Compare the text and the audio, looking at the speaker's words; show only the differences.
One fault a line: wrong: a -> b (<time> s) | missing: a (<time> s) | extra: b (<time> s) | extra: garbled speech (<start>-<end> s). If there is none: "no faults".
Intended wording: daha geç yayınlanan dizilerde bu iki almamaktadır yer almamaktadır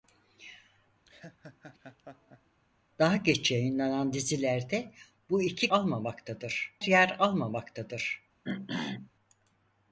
no faults